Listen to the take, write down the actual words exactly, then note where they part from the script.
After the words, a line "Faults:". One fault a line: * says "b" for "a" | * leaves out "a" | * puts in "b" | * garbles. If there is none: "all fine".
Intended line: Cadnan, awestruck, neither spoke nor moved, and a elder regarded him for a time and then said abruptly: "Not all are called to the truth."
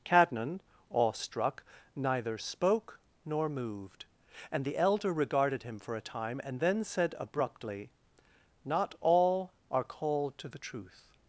Cadnan, awestruck, neither spoke nor moved, and the elder regarded him for a time and then said abruptly: "Not all are called to the truth."
Faults:
* says "the" for "a"